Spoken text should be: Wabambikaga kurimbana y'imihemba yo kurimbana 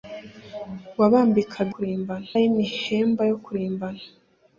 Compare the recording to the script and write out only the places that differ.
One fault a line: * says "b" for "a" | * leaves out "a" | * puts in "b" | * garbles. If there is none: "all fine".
all fine